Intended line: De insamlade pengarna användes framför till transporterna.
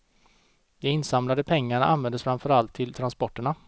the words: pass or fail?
fail